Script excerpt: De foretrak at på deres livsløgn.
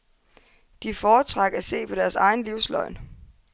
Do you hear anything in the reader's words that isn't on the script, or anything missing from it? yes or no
yes